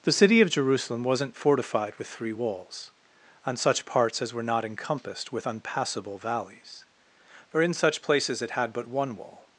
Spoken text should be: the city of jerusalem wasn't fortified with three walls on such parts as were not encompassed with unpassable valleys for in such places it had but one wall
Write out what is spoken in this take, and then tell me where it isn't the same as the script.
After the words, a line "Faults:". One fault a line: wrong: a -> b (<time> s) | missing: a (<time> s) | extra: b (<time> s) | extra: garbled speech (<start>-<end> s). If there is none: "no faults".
the city of jerusalem wasn't fortified with three walls on such parts as were not encompassed with unpassable valleys for in such places it had but one wall
Faults:
no faults